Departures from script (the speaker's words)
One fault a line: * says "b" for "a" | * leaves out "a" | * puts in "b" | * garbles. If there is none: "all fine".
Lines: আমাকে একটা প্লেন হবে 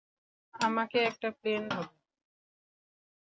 all fine